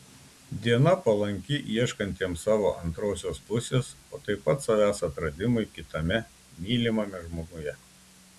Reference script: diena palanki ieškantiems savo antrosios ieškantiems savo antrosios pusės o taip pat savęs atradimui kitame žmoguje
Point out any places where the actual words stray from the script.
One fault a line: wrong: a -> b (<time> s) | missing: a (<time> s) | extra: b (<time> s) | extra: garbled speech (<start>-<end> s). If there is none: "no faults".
missing: ieškantiems savo antrosios (3.4 s)
extra: mylimame (6.7 s)